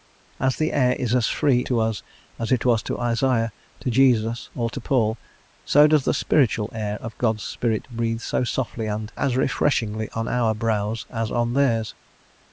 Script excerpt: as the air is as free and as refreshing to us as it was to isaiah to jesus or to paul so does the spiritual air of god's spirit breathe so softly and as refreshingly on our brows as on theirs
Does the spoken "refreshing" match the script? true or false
false